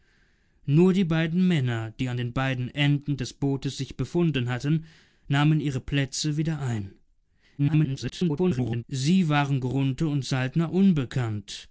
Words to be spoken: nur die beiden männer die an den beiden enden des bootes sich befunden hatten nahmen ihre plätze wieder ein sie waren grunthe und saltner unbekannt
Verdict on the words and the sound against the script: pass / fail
fail